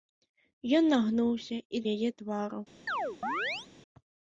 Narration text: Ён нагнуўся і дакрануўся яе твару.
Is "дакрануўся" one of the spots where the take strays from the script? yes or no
yes